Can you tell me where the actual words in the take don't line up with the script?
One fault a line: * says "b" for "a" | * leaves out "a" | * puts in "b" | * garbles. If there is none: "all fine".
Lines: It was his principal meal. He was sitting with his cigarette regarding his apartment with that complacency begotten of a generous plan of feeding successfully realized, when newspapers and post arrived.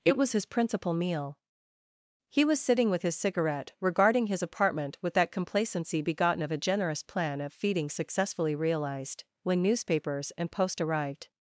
all fine